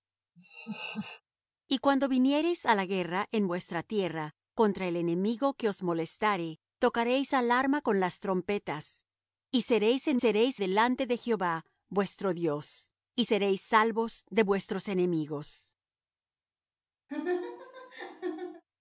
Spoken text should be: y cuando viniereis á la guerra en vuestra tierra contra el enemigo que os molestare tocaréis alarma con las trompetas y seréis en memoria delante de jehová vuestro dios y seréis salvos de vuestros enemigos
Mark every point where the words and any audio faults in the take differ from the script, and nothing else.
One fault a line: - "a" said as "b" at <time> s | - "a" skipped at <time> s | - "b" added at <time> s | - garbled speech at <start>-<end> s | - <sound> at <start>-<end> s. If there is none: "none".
- laugh at 0.4-1.2 s
- "memoria" said as "seréis" at 10.2 s
- laugh at 17.1-18.6 s